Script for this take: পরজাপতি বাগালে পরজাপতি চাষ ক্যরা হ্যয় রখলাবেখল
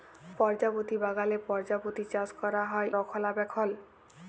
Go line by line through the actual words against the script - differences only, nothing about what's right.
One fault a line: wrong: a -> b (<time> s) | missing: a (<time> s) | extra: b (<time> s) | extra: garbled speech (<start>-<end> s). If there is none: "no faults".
no faults